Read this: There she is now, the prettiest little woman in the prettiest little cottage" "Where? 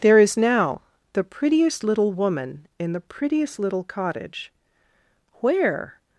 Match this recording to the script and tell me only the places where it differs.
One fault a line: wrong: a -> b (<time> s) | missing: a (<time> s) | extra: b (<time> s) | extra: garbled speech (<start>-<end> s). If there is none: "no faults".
missing: she (0.2 s)